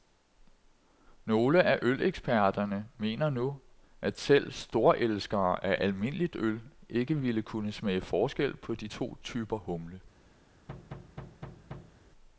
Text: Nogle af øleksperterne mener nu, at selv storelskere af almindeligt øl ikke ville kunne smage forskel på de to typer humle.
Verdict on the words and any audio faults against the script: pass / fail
fail